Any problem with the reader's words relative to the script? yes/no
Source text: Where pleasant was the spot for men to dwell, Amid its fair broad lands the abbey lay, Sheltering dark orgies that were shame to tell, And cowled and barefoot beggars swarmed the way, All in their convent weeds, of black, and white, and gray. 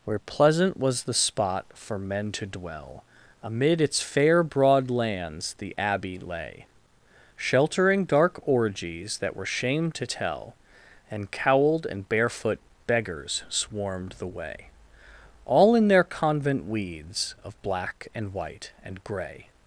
no